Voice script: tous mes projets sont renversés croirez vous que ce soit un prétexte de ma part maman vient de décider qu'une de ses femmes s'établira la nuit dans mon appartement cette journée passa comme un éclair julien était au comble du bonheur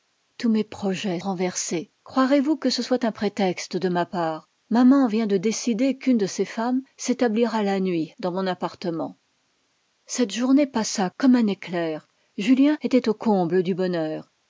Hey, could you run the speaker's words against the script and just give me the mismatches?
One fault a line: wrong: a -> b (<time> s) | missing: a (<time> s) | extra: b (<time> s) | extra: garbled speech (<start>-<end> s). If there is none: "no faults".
missing: sont (1.2 s)